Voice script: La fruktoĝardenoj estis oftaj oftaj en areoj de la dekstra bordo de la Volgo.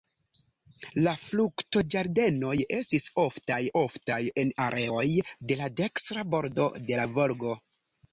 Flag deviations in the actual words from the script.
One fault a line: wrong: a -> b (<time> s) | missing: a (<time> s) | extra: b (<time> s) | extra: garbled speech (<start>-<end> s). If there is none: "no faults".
no faults